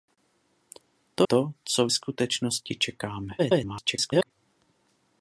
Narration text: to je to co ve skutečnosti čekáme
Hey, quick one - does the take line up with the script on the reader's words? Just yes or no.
no